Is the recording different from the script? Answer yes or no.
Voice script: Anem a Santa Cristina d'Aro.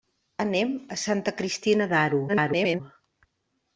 yes